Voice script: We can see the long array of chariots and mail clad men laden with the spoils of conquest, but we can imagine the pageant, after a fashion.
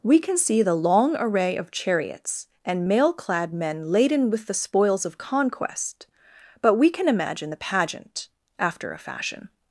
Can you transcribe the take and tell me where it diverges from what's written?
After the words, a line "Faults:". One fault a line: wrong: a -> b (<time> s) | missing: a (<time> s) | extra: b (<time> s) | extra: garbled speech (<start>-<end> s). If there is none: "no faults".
We can see the long array of chariots and mail clad men laden with the spoils of conquest, but we can imagine the pageant, after a fashion.
Faults:
no faults